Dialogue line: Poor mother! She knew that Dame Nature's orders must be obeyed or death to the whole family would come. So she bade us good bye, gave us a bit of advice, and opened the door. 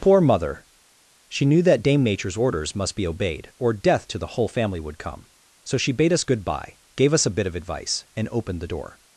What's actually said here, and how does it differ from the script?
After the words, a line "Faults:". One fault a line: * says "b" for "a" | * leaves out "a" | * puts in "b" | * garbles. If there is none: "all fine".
Poor mother! She knew that Dame Nature's orders must be obeyed or death to the whole family would come. So she bade us good bye, gave us a bit of advice, and opened the door.
Faults:
all fine